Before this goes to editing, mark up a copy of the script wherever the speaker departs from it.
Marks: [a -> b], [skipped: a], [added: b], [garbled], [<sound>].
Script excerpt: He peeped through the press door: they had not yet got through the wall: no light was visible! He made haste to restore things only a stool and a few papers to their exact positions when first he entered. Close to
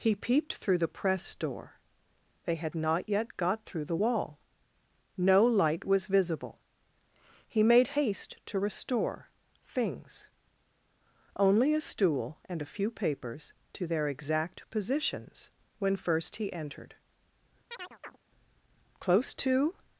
He peeped through the press door: they had not yet got through the wall: no light was visible! He made haste to restore things only a stool and a few papers to their exact positions when first he entered. [chirp] Close to